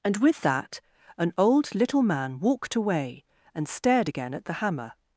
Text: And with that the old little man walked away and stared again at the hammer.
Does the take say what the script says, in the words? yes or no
no